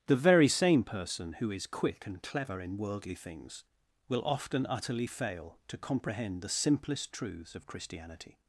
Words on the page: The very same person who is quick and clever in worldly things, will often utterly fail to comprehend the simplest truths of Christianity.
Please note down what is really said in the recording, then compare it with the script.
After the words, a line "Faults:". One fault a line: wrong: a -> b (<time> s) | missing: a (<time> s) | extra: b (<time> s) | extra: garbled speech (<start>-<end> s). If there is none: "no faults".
The very same person who is quick and clever in worldly things, will often utterly fail to comprehend the simplest truths of Christianity.
Faults:
no faults